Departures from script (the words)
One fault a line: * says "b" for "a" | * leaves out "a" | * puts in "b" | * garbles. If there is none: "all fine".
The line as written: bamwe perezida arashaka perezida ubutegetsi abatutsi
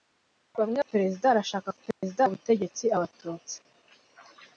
all fine